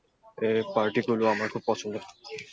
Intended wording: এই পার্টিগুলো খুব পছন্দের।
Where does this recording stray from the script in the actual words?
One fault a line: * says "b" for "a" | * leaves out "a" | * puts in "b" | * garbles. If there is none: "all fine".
* puts in "আমার"